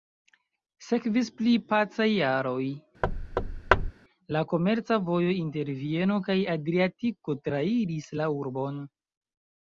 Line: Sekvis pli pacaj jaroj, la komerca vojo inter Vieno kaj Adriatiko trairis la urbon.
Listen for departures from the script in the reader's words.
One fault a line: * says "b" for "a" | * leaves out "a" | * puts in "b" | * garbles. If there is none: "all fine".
all fine